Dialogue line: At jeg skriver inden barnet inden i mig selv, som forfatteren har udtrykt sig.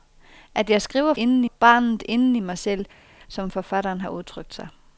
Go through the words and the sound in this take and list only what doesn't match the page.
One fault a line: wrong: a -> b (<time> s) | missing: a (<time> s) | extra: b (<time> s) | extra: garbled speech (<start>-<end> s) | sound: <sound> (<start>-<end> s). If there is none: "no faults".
no faults